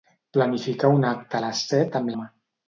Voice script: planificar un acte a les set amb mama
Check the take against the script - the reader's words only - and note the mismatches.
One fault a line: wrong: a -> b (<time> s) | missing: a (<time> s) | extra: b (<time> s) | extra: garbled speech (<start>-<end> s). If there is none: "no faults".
no faults